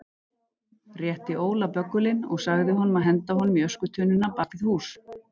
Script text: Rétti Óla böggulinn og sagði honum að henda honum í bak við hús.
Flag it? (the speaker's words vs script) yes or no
yes